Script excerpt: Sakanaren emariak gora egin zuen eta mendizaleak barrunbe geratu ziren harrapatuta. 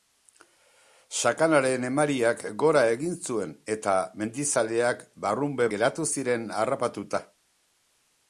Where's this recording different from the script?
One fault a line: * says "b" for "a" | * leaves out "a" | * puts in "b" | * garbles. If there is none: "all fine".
all fine